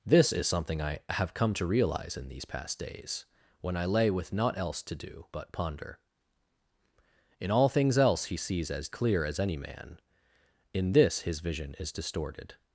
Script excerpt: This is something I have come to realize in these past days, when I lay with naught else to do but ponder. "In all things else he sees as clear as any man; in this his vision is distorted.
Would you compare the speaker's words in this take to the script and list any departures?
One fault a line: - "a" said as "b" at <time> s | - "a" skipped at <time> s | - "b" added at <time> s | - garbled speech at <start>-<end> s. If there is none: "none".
none